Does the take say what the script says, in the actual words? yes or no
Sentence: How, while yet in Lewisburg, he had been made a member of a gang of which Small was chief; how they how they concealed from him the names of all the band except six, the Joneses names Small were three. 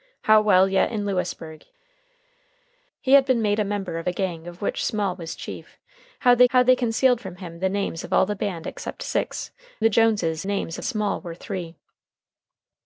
yes